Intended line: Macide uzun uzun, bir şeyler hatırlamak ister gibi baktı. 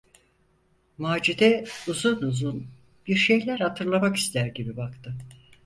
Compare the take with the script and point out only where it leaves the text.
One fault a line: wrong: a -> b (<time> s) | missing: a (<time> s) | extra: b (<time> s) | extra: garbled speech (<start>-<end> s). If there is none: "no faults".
no faults